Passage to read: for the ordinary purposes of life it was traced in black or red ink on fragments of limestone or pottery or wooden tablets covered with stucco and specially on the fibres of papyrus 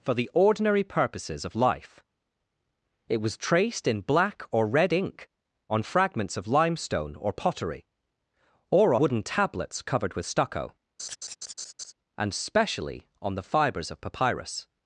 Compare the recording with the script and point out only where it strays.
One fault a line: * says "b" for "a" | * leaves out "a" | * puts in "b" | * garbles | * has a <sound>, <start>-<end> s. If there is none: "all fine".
* has a laugh, 11.0-11.9 s